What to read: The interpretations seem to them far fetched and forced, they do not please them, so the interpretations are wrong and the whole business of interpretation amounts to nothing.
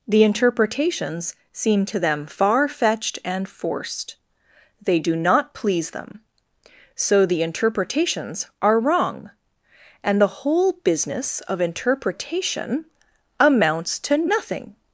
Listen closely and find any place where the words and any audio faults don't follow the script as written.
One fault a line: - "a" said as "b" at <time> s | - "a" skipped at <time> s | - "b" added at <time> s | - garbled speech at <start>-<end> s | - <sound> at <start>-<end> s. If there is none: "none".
none